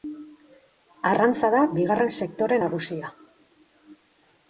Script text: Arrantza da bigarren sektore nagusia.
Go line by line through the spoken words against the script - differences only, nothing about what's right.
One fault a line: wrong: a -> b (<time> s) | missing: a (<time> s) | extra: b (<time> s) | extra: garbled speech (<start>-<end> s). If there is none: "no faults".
no faults